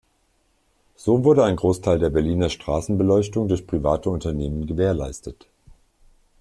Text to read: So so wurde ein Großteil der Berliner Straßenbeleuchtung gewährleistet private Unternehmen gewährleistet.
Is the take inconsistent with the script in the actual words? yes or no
yes